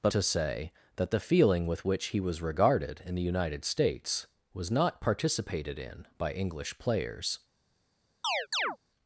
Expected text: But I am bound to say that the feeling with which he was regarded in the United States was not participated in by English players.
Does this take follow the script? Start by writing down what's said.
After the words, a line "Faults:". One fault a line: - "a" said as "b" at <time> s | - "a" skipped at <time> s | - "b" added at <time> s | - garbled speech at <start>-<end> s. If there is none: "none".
But to say that the feeling with which he was regarded in the United States was not participated in by English players.
Faults:
- "I am bound" skipped at 0.1 s